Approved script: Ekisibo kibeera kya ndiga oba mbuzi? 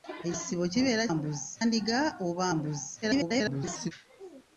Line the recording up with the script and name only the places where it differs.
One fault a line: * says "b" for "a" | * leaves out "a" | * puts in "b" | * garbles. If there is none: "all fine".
* says "mbuzi" for "kya"
* garbles